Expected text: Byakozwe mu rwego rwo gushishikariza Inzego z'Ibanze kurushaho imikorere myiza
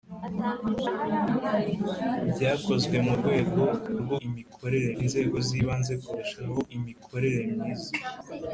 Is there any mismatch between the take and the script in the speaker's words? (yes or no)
yes